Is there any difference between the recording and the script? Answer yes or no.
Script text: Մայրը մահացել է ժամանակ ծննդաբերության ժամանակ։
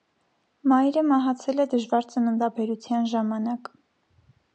yes